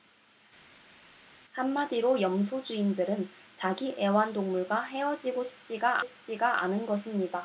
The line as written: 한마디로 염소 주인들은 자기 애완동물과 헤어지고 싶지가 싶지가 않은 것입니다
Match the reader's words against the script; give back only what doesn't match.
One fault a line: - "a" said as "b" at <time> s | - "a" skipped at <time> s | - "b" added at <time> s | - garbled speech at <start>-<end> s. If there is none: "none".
none